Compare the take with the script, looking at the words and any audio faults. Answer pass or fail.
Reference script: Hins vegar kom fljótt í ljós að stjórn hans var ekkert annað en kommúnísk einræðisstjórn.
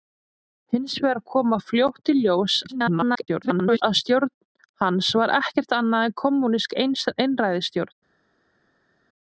fail